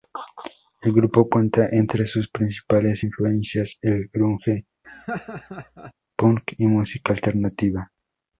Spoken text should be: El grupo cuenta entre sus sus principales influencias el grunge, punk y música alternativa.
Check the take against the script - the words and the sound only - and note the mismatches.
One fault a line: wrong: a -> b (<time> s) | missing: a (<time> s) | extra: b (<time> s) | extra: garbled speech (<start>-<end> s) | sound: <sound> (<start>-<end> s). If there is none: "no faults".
missing: sus (2.3 s)
sound: laugh (4.8-5.9 s)